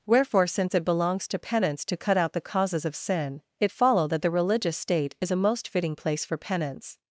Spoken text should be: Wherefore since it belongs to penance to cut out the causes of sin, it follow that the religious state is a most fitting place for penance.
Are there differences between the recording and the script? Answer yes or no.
no